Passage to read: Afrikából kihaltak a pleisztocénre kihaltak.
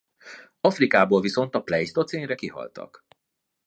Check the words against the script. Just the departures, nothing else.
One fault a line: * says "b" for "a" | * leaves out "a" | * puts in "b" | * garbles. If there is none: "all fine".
* says "viszont" for "kihaltak"